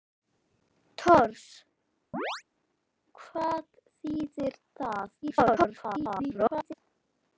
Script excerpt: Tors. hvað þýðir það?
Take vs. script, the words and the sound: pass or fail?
fail